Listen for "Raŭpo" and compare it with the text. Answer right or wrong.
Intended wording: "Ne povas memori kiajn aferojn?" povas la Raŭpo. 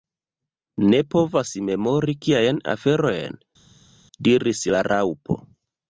right